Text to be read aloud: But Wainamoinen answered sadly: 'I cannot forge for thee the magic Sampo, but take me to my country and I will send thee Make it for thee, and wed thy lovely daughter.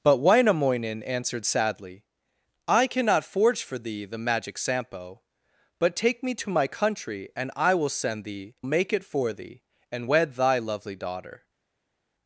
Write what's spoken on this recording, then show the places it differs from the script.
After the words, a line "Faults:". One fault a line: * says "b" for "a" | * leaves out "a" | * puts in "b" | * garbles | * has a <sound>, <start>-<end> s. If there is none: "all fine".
But Wainamoinen answered sadly: 'I cannot forge for thee the magic Sampo, but take me to my country and I will send thee Make it for thee, and wed thy lovely daughter.
Faults:
all fine